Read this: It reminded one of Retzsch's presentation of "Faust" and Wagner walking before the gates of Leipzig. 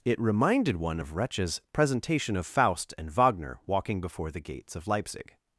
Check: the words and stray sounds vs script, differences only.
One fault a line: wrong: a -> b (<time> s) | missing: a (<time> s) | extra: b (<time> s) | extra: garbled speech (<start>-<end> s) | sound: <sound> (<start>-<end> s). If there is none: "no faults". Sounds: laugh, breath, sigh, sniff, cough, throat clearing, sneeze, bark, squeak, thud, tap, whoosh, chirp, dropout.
no faults